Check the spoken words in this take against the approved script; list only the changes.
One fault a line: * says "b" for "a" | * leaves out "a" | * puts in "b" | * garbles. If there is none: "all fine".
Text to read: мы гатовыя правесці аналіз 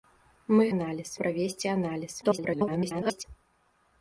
* says "аналіз" for "гатовыя"
* garbles